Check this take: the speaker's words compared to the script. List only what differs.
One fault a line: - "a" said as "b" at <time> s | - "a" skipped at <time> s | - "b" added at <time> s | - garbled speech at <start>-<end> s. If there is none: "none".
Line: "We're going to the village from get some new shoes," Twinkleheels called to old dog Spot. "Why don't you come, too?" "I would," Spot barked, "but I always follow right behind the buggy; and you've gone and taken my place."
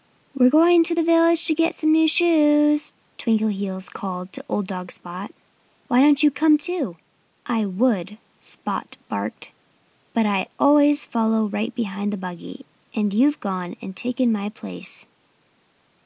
- "from" said as "to" at 1.4 s